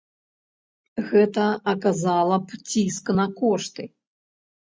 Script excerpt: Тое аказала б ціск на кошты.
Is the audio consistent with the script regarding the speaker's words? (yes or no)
no